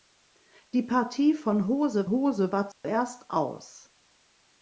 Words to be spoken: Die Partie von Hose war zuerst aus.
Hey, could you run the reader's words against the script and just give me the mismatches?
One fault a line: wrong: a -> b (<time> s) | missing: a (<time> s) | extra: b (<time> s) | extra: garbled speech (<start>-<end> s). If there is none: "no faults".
extra: Hose (2.1 s)